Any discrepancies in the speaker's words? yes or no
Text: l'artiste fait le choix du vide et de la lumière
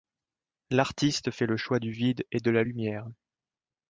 no